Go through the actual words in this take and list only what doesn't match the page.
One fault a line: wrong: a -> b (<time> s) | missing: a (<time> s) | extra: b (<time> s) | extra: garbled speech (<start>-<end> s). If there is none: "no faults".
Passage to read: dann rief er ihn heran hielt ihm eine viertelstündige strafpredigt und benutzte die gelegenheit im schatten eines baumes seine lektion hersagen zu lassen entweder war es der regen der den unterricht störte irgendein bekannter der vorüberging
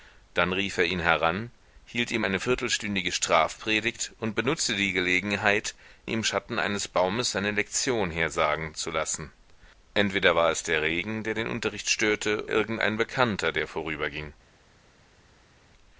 no faults